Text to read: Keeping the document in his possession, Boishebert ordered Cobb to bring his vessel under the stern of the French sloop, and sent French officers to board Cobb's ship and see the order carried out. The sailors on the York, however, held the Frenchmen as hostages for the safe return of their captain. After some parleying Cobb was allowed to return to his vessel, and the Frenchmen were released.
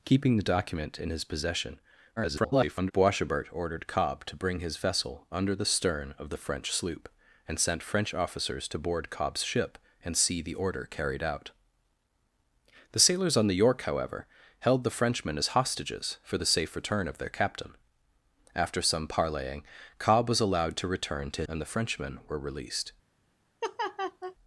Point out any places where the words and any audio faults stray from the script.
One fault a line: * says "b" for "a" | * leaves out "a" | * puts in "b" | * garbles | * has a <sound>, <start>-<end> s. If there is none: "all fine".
* garbles
* leaves out "his vessel"
* has a laugh, 23.6-24.4 s